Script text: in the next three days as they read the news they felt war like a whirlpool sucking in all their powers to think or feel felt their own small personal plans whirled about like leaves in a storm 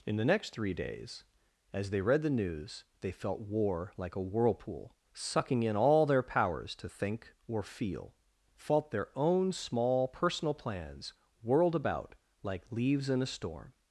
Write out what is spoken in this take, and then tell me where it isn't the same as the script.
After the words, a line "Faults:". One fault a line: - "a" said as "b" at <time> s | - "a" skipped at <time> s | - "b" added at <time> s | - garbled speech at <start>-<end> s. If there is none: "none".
in the next three days as they read the news they felt war like a whirlpool sucking in all their powers to think or feel felt their own small personal plans whirled about like leaves in a storm
Faults:
none